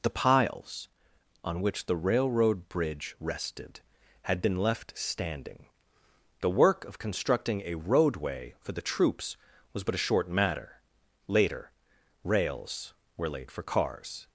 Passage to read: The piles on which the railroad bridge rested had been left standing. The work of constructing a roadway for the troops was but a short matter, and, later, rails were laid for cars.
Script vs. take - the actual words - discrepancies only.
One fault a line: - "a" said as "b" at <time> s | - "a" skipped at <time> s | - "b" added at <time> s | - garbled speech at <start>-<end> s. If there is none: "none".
- "and" skipped at 10.8 s